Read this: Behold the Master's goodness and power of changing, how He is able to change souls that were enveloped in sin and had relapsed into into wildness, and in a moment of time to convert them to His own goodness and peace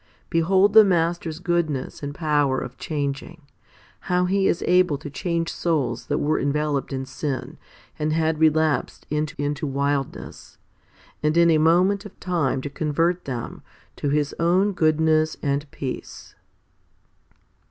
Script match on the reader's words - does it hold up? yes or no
yes